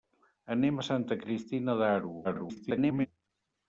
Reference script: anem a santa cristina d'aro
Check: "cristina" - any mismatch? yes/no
no